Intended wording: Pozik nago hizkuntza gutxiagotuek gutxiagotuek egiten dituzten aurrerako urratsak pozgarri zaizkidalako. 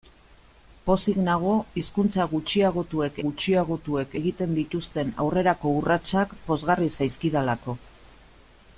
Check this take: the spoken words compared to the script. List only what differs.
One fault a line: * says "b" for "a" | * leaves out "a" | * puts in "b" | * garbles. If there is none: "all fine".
all fine